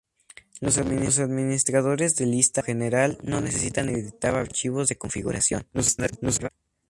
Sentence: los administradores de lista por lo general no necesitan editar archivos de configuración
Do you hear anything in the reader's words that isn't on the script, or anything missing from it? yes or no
yes